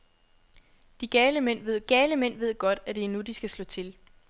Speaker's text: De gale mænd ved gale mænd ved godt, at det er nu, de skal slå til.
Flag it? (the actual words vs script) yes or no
no